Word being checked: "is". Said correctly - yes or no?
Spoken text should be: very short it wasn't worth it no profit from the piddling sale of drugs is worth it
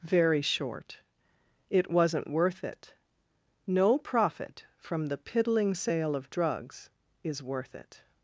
yes